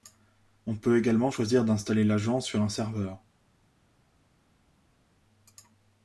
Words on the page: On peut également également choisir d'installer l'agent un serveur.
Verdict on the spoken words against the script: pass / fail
fail